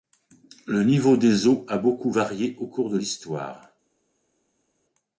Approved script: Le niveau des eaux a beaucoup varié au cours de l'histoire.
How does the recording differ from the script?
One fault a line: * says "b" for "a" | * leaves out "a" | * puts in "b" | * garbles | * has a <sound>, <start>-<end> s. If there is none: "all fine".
all fine